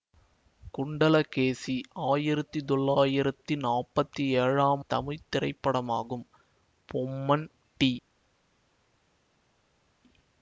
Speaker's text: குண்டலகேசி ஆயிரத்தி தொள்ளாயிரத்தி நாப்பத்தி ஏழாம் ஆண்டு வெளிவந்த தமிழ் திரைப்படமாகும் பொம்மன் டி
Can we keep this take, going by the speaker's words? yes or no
no